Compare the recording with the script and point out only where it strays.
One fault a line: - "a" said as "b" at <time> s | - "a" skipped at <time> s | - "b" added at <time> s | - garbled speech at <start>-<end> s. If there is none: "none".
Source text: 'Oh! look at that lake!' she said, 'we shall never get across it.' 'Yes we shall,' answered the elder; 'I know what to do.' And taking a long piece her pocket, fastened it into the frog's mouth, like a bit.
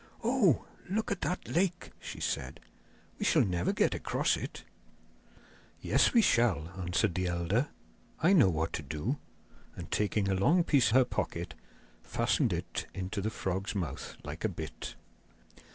none